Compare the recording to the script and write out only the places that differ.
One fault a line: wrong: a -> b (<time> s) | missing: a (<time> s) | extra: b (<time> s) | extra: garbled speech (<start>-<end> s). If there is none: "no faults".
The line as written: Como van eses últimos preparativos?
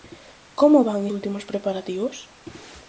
missing: eses (1.0 s)